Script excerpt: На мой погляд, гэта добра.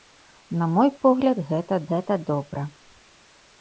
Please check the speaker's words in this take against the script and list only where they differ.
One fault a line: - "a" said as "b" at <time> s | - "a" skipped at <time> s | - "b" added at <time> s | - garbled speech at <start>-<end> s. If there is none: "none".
- "гэта" added at 1.9 s